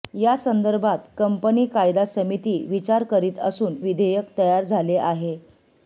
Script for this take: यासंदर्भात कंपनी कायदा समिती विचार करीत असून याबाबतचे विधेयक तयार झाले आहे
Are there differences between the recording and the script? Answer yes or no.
yes